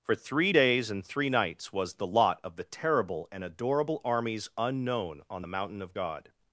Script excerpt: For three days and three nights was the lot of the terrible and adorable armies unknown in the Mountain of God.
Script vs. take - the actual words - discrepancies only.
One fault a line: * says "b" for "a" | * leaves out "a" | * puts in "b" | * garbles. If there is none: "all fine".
* says "on" for "in"